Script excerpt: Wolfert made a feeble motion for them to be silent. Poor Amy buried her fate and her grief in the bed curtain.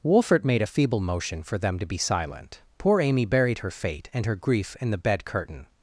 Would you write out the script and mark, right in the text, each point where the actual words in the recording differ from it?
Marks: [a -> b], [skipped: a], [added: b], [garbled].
Wolfert made a feeble motion for them to be silent. Poor Amy buried her fate and her grief in the bed curtain.